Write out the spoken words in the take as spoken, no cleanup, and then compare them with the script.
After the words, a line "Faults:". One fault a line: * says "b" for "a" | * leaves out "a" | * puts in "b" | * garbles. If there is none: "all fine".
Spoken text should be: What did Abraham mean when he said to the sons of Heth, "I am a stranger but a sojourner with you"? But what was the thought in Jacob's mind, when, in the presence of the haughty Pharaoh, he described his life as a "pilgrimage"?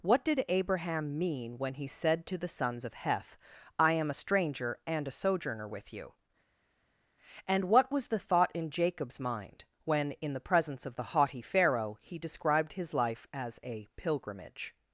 What did Abraham mean when he said to the sons of Heth, "I am a stranger and a sojourner with you"? And what was the thought in Jacob's mind, when, in the presence of the haughty Pharaoh, he described his life as a "pilgrimage"?
Faults:
* says "and" for "but"
* says "And" for "But"